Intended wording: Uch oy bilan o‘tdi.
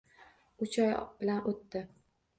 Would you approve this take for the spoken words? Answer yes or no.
yes